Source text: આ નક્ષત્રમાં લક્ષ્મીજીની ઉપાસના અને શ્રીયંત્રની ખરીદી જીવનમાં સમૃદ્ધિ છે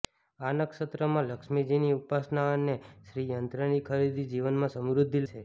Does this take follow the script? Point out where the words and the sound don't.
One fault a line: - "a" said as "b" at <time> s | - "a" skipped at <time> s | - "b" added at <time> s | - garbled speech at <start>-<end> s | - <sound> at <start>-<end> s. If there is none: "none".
none